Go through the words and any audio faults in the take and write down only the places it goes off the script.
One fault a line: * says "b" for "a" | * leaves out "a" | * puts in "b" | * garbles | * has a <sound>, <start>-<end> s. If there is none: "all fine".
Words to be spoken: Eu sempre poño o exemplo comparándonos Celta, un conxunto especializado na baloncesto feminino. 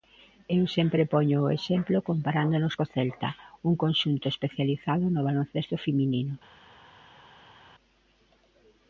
* puts in "co"
* says "no" for "na"